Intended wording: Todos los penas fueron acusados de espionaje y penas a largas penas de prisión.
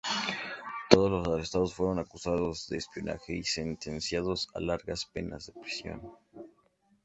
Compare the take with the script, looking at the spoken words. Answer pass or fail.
fail